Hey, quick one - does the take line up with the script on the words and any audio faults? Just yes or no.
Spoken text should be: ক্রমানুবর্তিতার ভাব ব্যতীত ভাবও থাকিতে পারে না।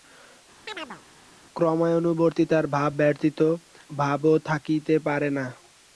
no